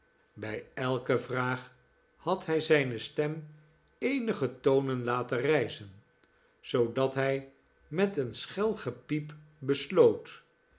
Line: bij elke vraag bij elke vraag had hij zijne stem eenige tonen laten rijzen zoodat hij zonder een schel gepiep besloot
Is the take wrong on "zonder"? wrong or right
wrong